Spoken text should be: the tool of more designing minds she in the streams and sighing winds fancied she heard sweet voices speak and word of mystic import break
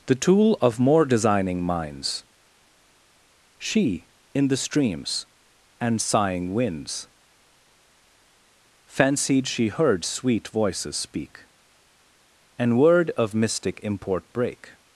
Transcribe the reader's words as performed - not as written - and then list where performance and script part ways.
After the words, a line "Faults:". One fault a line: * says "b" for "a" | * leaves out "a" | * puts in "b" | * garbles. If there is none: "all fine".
the tool of more designing minds she in the streams and sighing winds fancied she heard sweet voices speak and word of mystic import break
Faults:
all fine